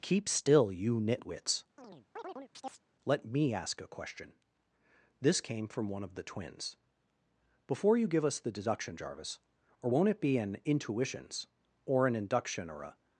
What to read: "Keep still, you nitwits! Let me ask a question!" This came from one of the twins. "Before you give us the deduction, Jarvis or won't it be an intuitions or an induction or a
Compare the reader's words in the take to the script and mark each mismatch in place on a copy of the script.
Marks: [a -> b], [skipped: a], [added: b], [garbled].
"Keep still, you nitwits! Let me ask a question!" This came from one of the twins. "Before you give us the deduction, Jarvis or won't it be an intuitions or an induction or a